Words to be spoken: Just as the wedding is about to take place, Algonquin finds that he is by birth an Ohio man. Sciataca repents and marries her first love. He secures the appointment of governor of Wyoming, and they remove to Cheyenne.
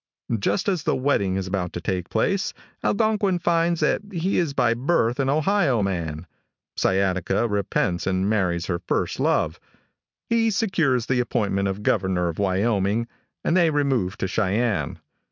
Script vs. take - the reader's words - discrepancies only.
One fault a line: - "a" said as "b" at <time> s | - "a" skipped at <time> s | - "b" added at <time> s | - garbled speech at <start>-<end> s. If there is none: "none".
none